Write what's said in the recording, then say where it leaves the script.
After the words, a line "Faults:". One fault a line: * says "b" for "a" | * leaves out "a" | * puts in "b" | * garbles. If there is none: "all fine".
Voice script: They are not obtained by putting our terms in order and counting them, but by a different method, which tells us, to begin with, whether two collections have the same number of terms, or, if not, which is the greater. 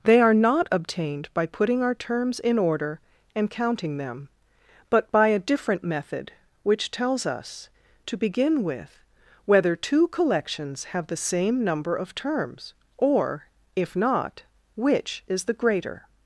They are not obtained by putting our terms in order and counting them, but by a different method, which tells us, to begin with, whether two collections have the same number of terms, or, if not, which is the greater.
Faults:
all fine